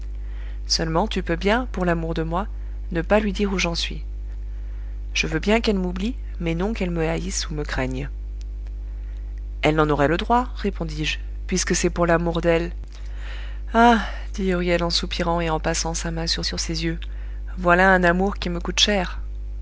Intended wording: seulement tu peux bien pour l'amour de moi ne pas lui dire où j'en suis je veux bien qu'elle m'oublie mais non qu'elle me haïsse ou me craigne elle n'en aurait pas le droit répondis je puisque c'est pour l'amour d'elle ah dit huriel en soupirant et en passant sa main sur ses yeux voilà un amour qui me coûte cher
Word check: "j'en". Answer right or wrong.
right